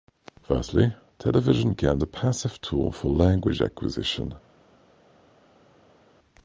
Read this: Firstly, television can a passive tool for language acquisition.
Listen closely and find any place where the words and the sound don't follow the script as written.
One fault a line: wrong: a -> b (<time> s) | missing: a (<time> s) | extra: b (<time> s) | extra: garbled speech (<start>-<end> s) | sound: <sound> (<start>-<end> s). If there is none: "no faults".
no faults